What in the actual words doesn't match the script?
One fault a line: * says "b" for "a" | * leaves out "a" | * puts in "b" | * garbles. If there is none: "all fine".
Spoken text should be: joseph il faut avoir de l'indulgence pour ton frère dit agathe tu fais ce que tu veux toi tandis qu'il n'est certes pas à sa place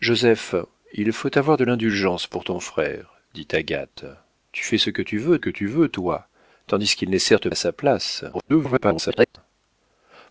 * puts in "que tu veux"
* leaves out "pas"
* garbles